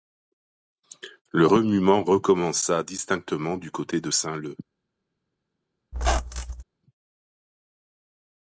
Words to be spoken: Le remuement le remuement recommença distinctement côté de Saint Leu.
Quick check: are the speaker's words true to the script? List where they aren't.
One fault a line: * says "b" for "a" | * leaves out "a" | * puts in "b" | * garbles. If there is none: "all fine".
* leaves out "le remuement"
* puts in "du"